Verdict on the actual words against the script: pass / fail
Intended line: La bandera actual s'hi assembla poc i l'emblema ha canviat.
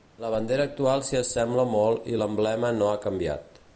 fail